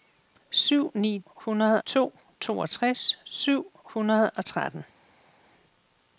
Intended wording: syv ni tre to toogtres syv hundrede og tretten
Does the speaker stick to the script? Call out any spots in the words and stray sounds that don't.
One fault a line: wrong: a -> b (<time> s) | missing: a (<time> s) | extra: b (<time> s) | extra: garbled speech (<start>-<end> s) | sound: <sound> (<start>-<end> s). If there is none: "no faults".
wrong: tre -> hundrede (1.3 s)